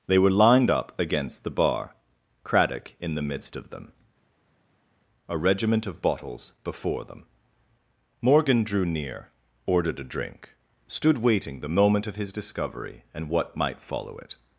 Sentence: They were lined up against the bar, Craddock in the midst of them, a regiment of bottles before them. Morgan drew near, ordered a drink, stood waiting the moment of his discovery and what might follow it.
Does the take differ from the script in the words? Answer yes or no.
no